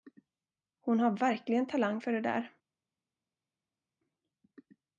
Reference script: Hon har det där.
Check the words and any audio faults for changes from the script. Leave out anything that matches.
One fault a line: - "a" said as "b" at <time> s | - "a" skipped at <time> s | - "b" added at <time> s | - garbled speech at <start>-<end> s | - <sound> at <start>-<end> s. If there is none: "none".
- "verkligen talang för" added at 1.2 s